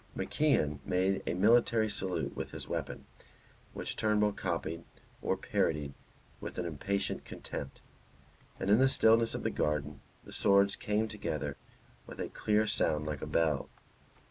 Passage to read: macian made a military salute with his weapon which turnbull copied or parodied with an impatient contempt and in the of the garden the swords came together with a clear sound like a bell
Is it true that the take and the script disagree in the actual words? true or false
true